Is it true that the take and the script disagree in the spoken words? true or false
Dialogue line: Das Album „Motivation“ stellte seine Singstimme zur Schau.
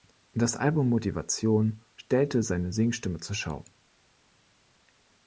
false